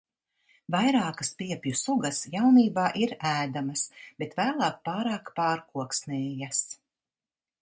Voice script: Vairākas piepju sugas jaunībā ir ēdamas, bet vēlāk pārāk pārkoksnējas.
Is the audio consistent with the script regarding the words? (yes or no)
yes